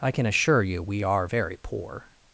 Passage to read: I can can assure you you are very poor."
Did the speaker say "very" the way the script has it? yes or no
yes